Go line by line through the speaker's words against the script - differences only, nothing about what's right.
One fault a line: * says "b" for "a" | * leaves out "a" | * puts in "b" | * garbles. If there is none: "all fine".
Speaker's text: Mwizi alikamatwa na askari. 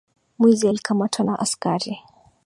all fine